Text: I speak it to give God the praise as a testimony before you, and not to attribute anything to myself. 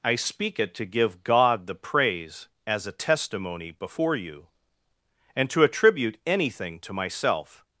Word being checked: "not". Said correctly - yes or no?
no